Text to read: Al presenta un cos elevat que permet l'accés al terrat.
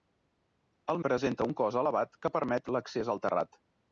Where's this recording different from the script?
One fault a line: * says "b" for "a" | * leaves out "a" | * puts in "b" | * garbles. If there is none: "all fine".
all fine